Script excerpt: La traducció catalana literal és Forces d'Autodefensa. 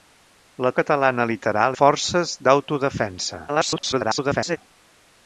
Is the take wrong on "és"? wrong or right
wrong